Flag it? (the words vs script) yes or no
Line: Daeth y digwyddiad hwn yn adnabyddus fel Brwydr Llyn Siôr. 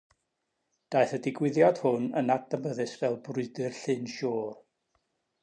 no